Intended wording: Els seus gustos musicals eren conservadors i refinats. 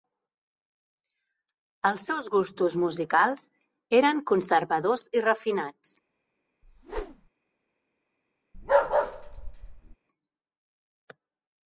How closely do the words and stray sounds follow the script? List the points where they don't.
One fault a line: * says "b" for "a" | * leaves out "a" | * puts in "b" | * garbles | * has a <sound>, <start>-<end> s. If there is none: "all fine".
* has a whoosh, 6.6-7.3 s
* has a bark, 8.5-10.0 s